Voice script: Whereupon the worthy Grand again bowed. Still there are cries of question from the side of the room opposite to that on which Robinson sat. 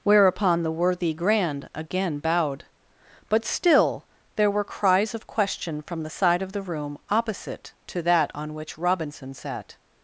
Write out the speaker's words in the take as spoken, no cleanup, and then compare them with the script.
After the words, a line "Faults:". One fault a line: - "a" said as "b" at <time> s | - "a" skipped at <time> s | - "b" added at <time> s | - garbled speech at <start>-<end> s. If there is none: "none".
Whereupon the worthy Grand again bowed. But still there were cries of question from the side of the room opposite to that on which Robinson sat.
Faults:
- "But" added at 3.3 s
- "are" said as "were" at 4.5 s